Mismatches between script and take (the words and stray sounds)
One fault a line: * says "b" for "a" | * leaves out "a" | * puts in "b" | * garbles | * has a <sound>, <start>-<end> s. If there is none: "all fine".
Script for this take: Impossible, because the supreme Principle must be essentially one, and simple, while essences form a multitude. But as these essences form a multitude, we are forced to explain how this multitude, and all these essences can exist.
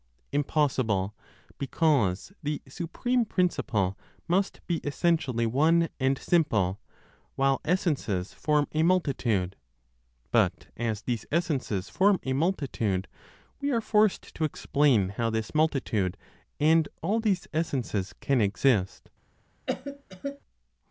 * has a cough, 19.7-20.4 s